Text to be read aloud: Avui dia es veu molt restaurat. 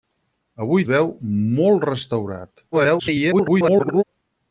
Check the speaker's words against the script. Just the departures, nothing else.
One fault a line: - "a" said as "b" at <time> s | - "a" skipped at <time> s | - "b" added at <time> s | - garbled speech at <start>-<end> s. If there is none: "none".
- "dia es" skipped at 0.8 s
- garbled speech at 2.7-4.0 s